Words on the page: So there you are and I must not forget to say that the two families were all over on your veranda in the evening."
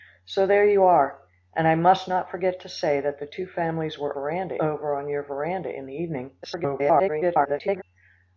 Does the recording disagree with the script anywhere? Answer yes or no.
yes